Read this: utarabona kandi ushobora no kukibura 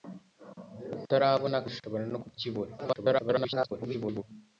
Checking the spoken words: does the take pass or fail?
fail